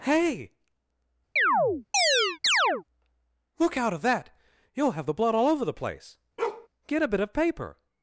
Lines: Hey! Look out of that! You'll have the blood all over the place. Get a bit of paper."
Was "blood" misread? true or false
false